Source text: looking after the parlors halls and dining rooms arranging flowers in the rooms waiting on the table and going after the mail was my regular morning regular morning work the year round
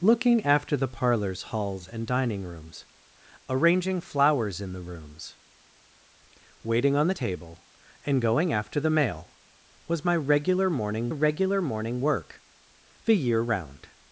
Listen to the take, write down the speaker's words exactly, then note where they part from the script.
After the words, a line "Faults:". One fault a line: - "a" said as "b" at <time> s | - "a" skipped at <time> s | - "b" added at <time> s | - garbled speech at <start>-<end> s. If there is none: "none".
looking after the parlors halls and dining rooms arranging flowers in the rooms waiting on the table and going after the mail was my regular morning regular morning work the year round
Faults:
none